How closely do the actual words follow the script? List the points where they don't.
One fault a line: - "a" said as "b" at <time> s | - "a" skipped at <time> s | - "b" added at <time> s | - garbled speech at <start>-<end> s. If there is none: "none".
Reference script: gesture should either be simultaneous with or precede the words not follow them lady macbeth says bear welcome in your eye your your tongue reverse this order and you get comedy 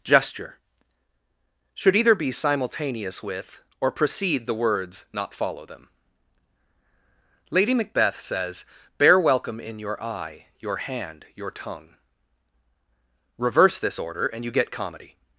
- "hand" added at 10.8 s